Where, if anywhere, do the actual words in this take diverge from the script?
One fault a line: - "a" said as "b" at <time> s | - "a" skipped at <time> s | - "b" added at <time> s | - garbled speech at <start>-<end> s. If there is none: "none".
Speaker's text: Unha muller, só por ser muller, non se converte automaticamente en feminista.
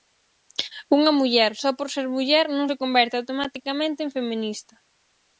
none